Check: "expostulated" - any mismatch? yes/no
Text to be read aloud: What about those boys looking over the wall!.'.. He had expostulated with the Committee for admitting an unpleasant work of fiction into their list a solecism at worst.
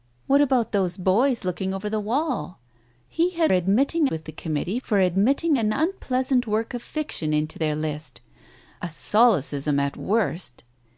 yes